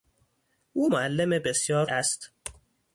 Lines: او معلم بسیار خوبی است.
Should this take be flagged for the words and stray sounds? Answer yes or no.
yes